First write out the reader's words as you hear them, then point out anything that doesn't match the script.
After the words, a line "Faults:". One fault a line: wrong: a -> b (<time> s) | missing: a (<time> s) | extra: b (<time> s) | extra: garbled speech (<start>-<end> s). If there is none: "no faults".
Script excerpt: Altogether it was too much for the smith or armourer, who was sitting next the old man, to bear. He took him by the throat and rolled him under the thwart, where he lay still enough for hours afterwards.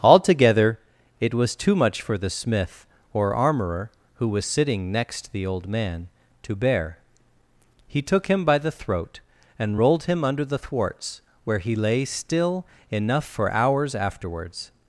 Altogether it was too much for the smith or armourer, who was sitting next the old man, to bear. He took him by the throat and rolled him under the thwarts, where he lay still enough for hours afterwards.
Faults:
wrong: thwart -> thwarts (10.6 s)